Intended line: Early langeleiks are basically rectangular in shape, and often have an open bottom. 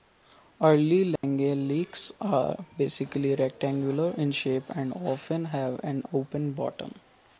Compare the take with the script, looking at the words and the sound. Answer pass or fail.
fail